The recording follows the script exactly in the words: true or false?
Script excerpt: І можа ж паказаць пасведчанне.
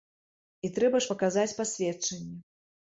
false